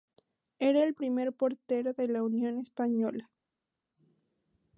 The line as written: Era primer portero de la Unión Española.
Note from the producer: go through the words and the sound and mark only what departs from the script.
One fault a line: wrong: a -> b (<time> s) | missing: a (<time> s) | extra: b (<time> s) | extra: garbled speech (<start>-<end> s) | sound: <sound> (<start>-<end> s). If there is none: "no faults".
extra: el (0.8 s)